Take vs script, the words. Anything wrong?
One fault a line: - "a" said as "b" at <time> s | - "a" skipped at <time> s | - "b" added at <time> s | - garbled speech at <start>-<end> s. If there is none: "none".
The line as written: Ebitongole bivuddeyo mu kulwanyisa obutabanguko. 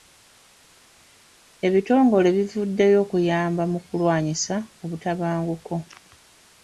- "okuyamba" added at 3.0 s